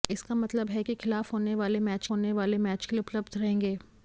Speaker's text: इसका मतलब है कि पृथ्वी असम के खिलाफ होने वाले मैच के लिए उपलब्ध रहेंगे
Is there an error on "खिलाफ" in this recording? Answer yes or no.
yes